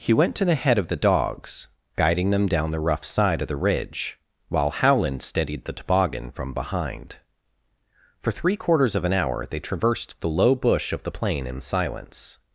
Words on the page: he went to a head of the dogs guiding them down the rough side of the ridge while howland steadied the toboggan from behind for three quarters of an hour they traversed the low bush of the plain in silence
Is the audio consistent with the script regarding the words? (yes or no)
no